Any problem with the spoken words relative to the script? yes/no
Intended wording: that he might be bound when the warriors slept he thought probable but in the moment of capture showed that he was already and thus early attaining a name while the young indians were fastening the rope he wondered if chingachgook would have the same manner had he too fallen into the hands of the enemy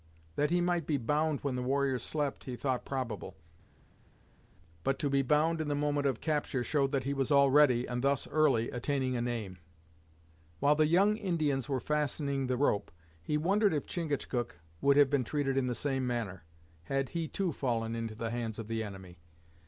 yes